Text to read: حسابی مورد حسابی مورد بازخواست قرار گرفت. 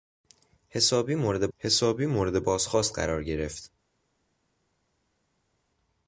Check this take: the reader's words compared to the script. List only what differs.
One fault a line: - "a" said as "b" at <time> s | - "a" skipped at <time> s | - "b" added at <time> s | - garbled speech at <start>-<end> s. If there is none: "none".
none